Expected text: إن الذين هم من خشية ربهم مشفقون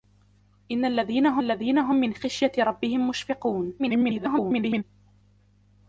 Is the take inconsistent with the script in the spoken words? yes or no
yes